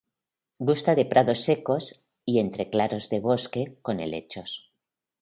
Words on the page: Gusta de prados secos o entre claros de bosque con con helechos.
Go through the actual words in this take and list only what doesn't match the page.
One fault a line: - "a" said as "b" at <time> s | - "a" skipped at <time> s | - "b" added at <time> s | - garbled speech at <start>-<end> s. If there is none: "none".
- "o" said as "y" at 2.2 s
- "con" skipped at 4.0 s